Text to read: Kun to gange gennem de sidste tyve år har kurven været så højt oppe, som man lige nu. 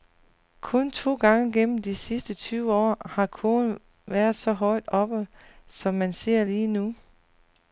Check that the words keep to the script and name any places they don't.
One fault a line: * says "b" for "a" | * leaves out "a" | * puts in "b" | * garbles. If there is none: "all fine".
* puts in "ser"